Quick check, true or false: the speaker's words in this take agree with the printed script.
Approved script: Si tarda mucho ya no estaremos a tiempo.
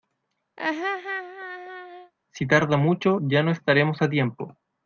true